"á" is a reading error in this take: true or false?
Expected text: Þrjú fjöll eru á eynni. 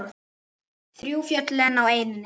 false